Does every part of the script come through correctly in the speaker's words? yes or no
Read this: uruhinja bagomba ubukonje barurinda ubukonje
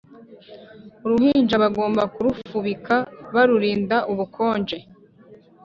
no